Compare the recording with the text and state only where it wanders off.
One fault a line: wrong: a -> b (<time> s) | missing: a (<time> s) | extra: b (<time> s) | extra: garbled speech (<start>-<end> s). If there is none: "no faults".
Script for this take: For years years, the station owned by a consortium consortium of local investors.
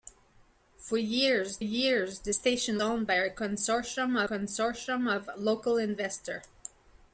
no faults